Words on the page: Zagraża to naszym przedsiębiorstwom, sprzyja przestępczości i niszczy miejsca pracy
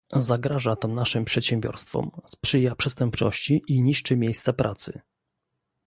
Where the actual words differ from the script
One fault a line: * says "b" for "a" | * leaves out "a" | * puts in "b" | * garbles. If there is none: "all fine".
all fine